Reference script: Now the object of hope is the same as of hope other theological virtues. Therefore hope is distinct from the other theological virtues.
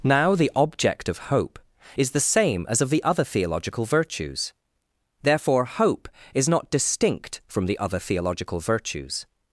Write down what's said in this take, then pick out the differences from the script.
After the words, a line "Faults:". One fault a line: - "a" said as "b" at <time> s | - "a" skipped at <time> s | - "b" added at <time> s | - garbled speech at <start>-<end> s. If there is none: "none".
Now the object of hope is the same as of the other theological virtues. Therefore hope is not distinct from the other theological virtues.
Faults:
- "hope" said as "the" at 2.9 s
- "not" added at 6.5 s